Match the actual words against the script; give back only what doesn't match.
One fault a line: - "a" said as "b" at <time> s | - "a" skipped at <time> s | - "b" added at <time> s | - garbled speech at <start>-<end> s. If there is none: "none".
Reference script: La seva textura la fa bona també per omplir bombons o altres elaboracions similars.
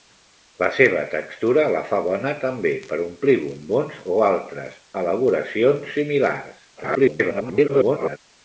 - garbled speech at 6.8-8.2 s